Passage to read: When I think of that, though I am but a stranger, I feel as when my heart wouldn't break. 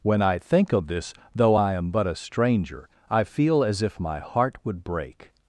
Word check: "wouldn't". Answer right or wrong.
wrong